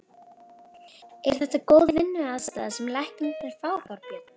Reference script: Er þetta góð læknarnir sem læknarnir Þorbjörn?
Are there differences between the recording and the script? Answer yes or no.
yes